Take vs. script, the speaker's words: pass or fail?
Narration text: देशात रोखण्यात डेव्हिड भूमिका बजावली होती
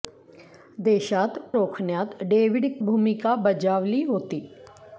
pass